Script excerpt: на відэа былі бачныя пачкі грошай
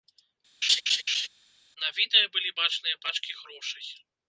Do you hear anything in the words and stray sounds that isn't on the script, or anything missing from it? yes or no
yes